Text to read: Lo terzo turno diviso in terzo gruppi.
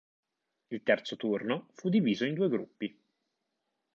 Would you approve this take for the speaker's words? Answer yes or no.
no